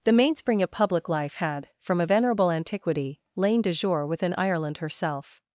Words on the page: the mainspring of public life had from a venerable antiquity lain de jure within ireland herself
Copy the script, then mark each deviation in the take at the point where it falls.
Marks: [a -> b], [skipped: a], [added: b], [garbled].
the mainspring of public life had from a venerable antiquity lain de jure within ireland herself